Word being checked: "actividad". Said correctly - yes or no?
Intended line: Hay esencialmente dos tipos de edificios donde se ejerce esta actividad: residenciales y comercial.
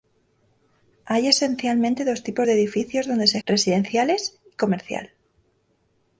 no